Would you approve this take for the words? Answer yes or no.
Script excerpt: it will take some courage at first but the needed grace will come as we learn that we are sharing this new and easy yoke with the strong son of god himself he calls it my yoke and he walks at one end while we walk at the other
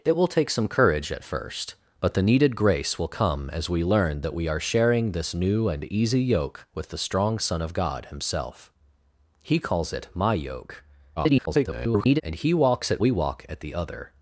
no